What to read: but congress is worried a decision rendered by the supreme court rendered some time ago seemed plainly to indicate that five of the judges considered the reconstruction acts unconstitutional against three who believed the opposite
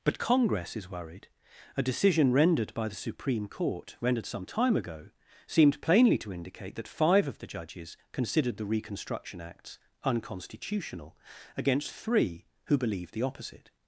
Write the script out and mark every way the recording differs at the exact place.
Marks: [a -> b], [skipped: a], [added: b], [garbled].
but congress is worried a decision rendered by the supreme court rendered some time ago seemed plainly to indicate that five of the judges considered the reconstruction acts unconstitutional against three who believed the opposite